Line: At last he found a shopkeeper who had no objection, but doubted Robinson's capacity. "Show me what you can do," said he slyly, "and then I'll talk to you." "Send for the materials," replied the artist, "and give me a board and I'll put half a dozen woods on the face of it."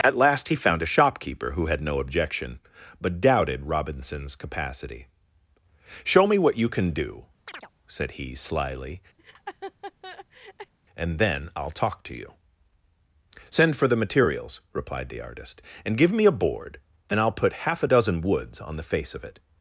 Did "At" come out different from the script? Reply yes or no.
no